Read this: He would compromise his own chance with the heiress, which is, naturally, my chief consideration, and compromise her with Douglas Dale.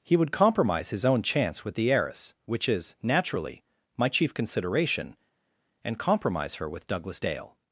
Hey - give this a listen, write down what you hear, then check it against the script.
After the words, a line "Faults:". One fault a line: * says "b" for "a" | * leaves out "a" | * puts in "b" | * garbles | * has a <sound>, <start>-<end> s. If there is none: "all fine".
He would compromise his own chance with the heiress, which is, naturally, my chief consideration, and compromise her with Douglas Dale.
Faults:
all fine